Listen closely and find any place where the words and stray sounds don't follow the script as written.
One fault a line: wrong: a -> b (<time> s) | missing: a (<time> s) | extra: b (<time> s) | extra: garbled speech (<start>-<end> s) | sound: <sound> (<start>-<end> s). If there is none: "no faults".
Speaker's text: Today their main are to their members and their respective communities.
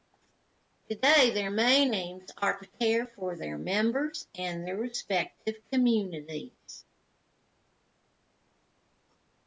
extra: aims (1.9 s)
extra: care for (2.7 s)